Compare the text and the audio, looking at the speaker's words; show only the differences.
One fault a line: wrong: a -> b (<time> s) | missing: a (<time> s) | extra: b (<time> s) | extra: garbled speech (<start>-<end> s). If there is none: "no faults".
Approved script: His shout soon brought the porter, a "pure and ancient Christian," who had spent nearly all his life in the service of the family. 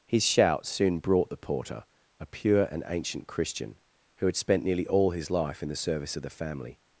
no faults